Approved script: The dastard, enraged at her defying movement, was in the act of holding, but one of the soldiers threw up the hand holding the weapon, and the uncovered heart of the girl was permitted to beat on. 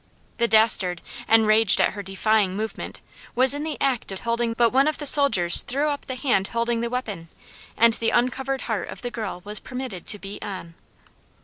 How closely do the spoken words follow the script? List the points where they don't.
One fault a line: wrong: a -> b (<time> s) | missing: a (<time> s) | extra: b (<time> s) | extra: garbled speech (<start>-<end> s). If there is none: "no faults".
no faults